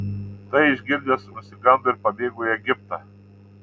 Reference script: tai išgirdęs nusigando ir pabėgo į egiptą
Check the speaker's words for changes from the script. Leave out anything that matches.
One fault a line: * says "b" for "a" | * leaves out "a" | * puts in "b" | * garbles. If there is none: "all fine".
all fine